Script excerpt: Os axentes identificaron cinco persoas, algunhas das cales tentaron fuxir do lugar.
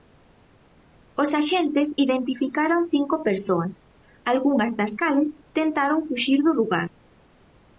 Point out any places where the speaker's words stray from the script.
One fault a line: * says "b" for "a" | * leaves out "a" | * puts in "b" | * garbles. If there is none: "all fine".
all fine